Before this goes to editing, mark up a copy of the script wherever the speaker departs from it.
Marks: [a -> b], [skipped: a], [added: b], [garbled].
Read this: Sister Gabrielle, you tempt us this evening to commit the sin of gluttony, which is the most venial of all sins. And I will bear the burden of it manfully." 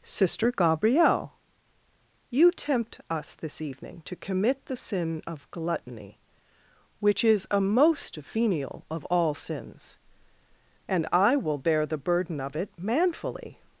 Sister Gabrielle, you tempt us this evening to commit the sin of gluttony, which is [the -> a] most venial of all sins. And I will bear the burden of it manfully."